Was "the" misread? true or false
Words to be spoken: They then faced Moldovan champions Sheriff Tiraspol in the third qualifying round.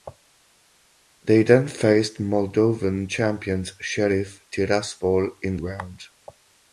true